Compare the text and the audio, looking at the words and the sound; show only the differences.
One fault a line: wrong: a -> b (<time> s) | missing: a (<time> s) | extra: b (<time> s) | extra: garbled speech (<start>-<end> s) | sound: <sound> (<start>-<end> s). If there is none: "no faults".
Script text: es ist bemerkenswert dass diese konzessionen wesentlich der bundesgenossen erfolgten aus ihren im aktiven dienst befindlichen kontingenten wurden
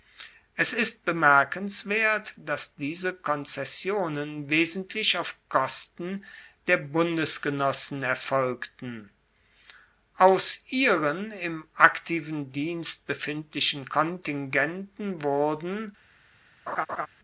extra: auf kosten (5.2 s)
sound: laugh (16.7-17.1 s)